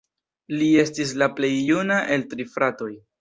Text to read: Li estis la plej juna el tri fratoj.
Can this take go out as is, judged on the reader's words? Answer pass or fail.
pass